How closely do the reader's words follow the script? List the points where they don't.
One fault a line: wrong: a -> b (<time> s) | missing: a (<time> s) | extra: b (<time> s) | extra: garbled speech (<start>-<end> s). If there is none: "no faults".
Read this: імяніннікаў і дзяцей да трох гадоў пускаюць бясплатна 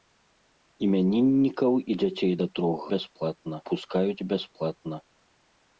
wrong: гадоў -> бясплатна (2.9 s)